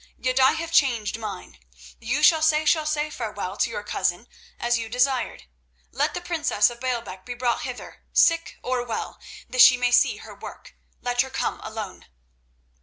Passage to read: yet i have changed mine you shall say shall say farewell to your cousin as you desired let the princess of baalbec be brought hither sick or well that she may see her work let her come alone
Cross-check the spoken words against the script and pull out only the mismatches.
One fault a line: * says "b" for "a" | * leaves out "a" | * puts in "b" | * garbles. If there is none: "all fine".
all fine